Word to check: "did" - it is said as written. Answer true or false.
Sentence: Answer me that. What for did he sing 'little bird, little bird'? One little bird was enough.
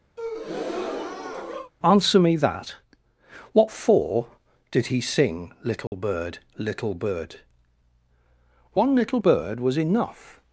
true